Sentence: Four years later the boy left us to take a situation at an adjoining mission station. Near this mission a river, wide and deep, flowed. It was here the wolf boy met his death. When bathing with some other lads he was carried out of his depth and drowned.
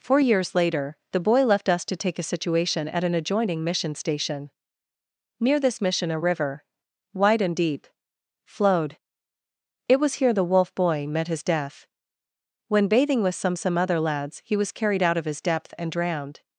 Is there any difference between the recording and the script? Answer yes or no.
yes